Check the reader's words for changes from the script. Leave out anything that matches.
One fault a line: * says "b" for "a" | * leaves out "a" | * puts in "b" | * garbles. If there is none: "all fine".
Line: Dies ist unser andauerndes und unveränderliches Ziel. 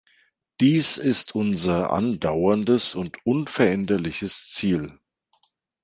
all fine